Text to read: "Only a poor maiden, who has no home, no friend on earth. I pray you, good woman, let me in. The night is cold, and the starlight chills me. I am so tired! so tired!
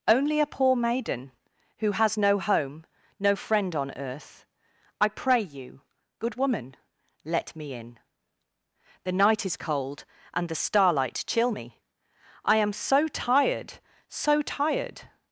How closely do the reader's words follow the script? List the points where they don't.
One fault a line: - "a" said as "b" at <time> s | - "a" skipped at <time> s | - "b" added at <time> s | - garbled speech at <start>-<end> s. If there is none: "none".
- "chills" said as "chill" at 11.3 s